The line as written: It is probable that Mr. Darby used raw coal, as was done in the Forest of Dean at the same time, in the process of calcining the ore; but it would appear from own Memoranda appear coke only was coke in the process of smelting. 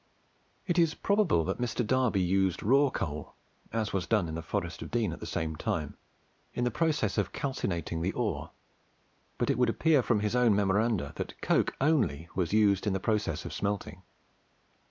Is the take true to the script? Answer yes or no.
no